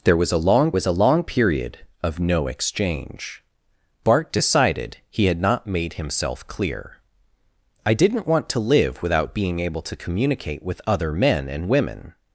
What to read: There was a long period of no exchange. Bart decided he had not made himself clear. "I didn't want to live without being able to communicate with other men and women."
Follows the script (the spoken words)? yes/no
no